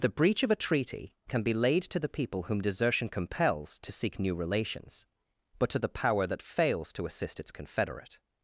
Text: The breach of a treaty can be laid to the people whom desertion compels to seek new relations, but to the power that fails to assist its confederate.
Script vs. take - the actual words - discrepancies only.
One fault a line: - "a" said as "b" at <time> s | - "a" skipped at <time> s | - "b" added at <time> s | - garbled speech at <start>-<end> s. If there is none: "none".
none